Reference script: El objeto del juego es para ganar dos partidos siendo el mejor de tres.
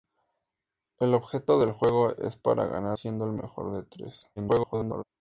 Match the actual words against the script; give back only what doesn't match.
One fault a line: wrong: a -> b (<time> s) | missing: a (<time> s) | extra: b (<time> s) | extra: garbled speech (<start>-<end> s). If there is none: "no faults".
missing: dos partidos (3.0 s)
extra: garbled speech (4.4-5.0 s)